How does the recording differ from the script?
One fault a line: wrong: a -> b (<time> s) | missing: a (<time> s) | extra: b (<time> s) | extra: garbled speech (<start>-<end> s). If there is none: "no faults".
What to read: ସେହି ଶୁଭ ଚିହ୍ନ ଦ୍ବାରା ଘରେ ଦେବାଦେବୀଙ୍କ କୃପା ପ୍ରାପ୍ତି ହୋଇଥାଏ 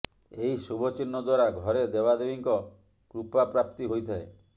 wrong: ସେହି -> ଏହି (0.3 s)